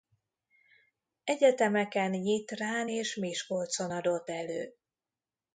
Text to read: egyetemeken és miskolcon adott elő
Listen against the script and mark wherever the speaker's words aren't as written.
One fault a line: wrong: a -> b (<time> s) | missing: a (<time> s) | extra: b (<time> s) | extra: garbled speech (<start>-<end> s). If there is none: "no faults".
extra: nyitrán (2.1 s)